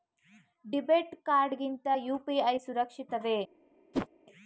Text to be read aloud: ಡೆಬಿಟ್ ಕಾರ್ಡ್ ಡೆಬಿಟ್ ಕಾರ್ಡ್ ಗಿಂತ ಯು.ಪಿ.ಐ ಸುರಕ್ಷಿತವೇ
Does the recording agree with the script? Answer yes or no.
no